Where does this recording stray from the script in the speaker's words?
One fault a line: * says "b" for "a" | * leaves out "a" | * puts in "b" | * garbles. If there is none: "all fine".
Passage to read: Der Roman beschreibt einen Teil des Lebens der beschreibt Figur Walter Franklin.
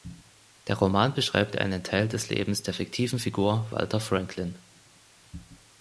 * says "fiktiven" for "beschreibt"